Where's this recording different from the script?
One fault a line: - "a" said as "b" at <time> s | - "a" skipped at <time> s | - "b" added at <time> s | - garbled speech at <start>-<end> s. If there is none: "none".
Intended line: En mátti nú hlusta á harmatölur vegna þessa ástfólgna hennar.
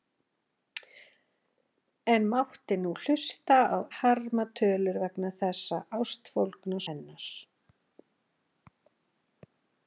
none